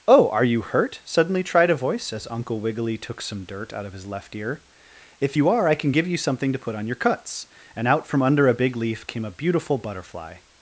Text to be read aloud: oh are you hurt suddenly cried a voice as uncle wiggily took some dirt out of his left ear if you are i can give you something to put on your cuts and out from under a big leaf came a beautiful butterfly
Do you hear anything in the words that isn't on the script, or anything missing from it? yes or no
yes